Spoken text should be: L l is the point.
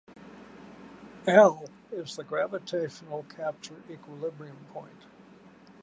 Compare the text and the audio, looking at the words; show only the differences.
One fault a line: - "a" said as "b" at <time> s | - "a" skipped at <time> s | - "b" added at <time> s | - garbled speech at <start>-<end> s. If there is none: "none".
- "l" skipped at 1.6 s
- "gravitational capture equilibrium" added at 2.2 s